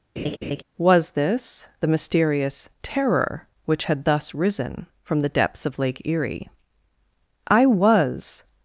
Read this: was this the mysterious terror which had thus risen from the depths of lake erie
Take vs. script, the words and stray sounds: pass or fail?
fail